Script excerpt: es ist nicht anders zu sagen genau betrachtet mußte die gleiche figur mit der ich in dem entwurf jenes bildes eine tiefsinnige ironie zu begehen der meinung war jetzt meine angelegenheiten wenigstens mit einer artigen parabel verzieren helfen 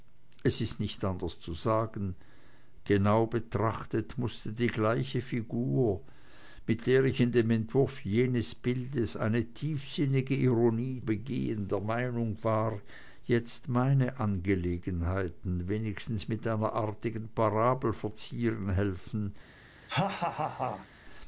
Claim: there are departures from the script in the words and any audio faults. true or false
true